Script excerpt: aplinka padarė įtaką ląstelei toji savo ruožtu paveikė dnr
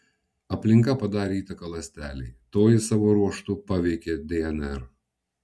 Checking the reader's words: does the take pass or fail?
pass